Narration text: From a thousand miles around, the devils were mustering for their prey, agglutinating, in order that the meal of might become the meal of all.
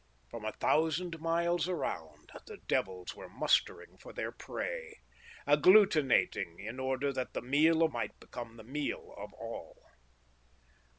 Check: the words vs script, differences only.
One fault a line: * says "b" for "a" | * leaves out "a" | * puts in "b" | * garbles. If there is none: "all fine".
all fine